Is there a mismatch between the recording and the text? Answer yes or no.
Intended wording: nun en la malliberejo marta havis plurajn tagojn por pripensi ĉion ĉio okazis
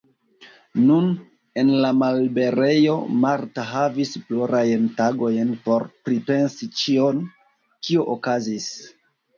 yes